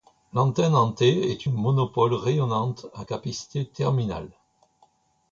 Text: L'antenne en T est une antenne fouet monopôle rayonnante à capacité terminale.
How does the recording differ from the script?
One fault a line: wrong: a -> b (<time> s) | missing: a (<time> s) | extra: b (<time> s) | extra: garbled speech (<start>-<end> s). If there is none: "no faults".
missing: une antenne fouet (1.5 s)